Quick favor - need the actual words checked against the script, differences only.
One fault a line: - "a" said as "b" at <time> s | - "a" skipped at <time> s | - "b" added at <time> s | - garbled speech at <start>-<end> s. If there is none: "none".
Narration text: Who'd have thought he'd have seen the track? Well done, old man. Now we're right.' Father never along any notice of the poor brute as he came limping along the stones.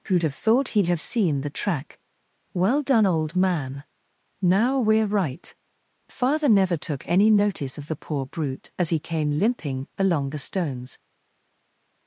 - "along" said as "took" at 6.8 s